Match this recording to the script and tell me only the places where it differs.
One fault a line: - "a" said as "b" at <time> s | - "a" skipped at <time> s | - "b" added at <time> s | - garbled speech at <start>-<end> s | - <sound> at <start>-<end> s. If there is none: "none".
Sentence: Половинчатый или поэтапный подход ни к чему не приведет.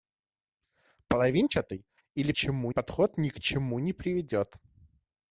- "поэтапный" said as "чему" at 2.3 s